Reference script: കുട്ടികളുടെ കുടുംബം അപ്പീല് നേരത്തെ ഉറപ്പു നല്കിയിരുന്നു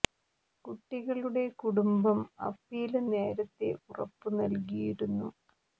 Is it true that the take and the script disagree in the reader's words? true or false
false